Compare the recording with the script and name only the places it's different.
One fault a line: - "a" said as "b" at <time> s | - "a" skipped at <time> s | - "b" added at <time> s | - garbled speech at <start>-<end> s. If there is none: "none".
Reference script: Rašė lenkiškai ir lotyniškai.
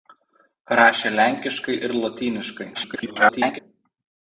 - garbled speech at 2.7-3.6 s